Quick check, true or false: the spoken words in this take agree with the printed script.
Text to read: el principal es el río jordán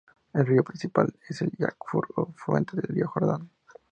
false